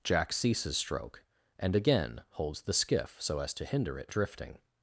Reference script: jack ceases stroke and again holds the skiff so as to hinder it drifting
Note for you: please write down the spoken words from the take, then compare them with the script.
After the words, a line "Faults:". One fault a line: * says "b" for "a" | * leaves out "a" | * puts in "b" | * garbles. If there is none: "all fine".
jack ceases stroke and again holds the skiff so as to hinder it drifting
Faults:
all fine